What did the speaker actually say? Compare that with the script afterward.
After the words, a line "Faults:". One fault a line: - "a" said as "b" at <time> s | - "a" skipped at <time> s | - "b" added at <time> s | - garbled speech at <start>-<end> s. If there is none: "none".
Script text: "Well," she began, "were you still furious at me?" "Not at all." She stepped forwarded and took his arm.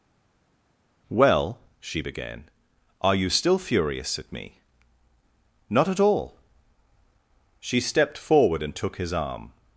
"Well," she began, "are you still furious at me?" "Not at all." She stepped forward and took his arm.
Faults:
- "were" said as "are" at 3.0 s
- "forwarded" said as "forward" at 8.2 s